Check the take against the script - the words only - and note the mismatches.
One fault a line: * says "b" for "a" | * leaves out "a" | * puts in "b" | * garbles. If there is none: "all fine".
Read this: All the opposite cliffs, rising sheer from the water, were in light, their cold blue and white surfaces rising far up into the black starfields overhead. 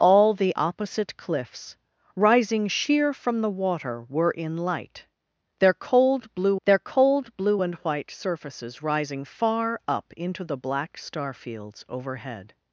* puts in "their cold blue"